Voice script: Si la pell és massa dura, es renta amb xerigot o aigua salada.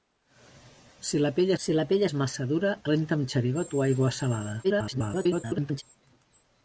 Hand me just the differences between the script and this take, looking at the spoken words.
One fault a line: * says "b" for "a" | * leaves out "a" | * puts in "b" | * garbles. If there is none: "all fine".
* puts in "si la pell"
* leaves out "es"
* garbles